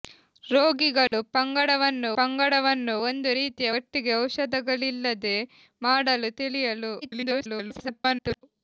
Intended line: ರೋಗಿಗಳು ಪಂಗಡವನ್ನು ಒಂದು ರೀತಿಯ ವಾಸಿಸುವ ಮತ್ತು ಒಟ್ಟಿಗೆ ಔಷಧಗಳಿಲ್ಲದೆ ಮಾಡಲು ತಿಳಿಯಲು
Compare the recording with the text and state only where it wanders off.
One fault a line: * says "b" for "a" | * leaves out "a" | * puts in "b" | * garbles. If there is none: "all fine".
* puts in "ಪಂಗಡವನ್ನು"
* leaves out "ವಾಸಿಸುವ ಮತ್ತು"
* garbles